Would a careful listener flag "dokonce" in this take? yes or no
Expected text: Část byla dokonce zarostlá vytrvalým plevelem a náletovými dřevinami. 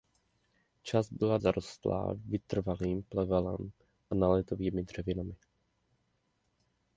yes